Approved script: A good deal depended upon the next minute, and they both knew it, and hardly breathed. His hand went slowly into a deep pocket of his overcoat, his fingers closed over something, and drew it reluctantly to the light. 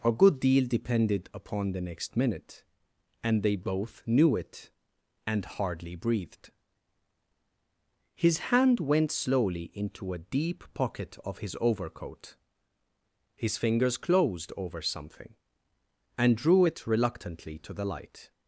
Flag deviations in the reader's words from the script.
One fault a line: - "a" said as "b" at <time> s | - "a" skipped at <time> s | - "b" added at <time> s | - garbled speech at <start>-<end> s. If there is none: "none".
none